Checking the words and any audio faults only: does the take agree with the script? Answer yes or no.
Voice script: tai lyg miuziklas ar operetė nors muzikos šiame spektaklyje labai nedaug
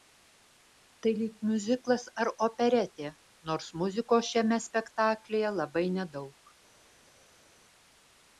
yes